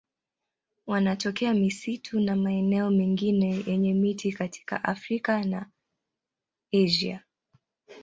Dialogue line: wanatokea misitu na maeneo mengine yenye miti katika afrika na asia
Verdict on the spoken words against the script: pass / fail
pass